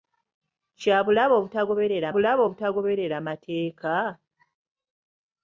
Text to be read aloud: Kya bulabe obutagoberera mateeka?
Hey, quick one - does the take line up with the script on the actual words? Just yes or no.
no